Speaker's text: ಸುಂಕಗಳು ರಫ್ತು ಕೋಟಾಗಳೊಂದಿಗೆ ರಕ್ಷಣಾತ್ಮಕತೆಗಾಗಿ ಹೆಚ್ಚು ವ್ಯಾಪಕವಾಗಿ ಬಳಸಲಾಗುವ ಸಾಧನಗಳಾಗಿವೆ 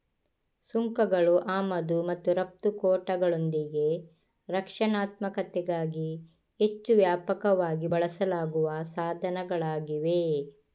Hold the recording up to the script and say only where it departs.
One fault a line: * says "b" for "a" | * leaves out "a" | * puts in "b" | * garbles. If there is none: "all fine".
* puts in "ಆಮದು ಮತ್ತು"